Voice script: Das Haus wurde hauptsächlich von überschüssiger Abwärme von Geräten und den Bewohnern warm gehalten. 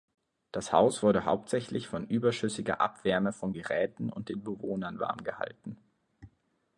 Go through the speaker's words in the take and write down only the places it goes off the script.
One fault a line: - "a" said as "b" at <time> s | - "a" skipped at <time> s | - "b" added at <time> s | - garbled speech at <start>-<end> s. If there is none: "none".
none